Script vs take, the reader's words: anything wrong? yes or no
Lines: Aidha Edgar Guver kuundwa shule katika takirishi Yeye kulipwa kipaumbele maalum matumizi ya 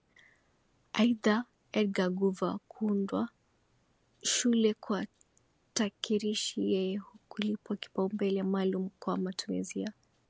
yes